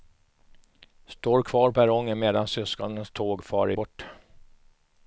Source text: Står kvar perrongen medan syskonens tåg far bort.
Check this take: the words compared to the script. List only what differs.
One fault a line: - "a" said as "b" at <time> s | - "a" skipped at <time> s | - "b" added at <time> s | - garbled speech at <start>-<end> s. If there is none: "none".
none